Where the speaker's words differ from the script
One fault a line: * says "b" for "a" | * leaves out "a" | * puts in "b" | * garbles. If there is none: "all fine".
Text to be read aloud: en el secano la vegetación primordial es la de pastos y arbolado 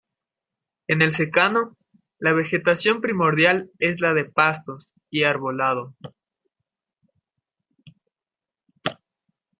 all fine